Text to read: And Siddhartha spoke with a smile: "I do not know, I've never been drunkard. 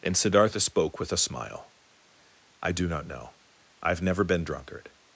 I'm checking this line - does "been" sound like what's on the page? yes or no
yes